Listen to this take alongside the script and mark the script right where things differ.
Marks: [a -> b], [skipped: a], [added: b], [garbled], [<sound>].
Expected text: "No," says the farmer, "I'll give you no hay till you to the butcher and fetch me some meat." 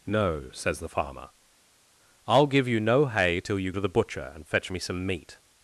"No," says the farmer, "I'll give you no hay till you to the butcher and fetch me some meat."